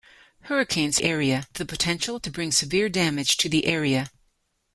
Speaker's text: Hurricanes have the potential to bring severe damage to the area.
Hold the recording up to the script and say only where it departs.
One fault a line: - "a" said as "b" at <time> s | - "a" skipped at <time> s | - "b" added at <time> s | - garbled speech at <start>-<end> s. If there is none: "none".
- "have" said as "area" at 1.0 s